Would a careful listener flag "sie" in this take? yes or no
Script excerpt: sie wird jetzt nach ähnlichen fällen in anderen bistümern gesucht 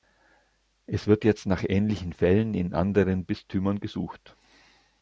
yes